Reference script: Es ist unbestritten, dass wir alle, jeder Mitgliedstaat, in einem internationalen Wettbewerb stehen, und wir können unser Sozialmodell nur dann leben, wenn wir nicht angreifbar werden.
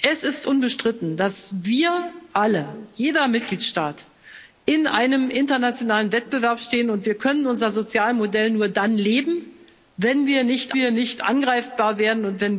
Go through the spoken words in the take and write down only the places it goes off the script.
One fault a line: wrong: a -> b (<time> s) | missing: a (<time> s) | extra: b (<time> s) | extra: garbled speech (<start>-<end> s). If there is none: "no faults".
extra: wir nicht (10.7 s)